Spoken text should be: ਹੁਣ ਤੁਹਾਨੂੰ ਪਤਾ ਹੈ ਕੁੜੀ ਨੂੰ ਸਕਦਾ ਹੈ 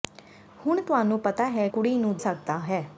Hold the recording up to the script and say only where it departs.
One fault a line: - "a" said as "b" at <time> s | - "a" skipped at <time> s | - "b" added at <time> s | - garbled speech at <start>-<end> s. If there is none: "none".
none